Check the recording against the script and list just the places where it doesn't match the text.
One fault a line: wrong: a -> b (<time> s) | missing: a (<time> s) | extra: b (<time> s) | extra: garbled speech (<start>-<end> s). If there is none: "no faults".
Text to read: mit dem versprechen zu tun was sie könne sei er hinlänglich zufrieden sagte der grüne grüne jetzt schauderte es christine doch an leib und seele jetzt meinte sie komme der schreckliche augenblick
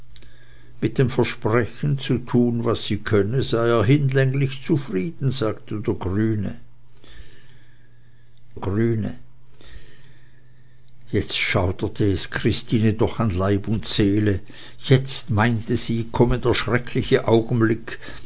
no faults